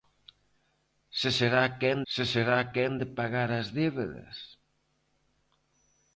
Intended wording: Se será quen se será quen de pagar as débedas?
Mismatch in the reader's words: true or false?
false